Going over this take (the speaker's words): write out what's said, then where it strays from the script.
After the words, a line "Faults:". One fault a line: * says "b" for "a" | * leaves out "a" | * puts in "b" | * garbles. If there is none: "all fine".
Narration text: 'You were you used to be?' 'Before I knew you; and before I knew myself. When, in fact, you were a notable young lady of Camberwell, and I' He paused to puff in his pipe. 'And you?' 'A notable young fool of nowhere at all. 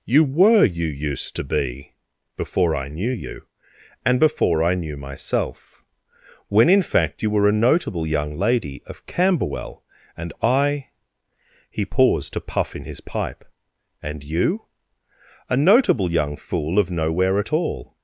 'You were you used to be?' 'Before I knew you; and before I knew myself. When, in fact, you were a notable young lady of Camberwell, and I' He paused to puff in his pipe. 'And you?' 'A notable young fool of nowhere at all.
Faults:
all fine